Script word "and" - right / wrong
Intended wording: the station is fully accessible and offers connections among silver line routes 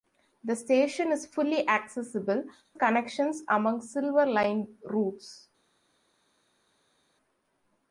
wrong